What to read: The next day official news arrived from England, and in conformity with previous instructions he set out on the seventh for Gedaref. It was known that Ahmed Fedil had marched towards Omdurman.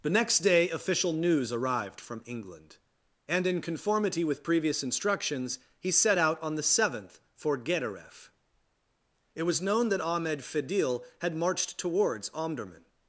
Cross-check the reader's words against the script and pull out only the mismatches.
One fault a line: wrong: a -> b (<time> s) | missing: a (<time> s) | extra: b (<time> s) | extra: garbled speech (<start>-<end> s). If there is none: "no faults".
no faults